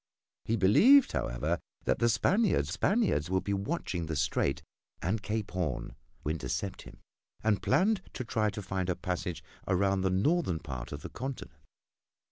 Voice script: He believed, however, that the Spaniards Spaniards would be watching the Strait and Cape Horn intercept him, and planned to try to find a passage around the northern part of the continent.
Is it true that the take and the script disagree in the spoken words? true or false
false